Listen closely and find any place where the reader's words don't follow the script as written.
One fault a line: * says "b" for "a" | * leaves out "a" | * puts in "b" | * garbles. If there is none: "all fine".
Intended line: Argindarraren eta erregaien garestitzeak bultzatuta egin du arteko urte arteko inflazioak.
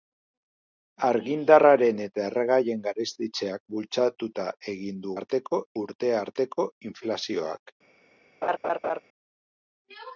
all fine